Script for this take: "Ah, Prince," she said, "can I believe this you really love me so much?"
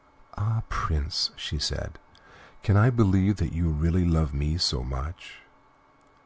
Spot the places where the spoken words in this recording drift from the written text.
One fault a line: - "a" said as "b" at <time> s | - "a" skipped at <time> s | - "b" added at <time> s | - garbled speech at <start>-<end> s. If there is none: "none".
- "this" said as "that" at 3.4 s